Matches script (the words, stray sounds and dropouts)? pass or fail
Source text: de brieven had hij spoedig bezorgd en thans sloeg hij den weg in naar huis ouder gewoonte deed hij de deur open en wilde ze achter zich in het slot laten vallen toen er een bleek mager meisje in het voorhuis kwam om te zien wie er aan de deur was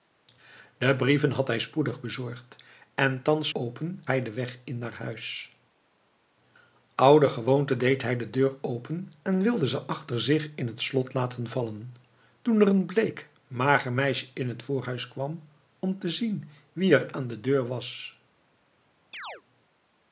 fail